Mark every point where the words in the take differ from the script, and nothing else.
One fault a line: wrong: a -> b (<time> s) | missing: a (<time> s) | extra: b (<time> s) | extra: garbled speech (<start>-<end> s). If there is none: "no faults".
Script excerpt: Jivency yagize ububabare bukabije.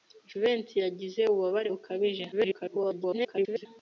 extra: garbled speech (2.3-3.7 s)